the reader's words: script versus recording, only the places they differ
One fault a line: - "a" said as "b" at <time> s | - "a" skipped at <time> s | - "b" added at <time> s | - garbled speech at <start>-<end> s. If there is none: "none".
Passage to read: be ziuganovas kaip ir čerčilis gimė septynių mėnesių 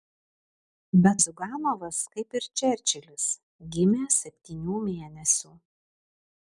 none